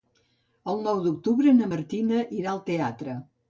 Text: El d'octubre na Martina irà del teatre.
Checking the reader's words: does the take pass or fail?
fail